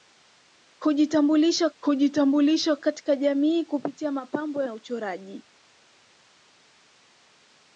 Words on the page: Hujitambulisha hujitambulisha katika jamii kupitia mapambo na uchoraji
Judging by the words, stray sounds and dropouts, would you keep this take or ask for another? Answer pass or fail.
pass